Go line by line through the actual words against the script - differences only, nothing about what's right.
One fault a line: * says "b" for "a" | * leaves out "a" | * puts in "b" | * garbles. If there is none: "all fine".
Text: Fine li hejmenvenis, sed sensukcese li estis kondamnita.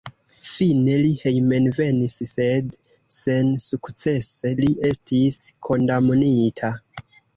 all fine